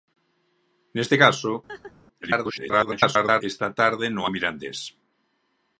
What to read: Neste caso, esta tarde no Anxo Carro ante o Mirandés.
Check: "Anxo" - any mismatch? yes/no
yes